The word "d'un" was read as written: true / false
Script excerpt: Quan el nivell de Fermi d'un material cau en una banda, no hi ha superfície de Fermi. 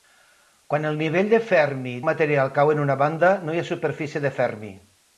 false